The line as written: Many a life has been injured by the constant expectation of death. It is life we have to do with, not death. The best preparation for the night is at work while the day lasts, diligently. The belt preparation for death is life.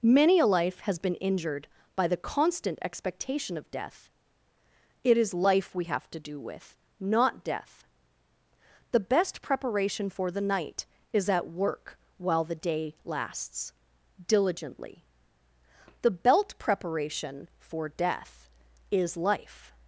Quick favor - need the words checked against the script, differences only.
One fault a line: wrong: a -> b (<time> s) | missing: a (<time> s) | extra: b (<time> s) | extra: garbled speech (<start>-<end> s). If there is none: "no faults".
no faults